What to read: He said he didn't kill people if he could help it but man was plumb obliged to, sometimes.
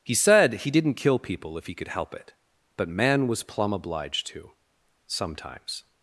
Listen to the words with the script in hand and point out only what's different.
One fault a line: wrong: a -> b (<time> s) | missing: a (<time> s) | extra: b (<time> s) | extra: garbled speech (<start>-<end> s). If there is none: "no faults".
no faults